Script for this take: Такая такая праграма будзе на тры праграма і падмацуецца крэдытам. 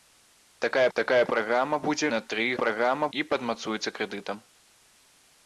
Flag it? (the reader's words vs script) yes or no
no